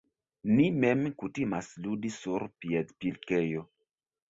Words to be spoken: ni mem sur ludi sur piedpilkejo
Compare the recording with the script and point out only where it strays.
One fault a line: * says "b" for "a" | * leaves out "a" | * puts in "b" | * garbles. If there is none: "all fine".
* says "kutimas" for "sur"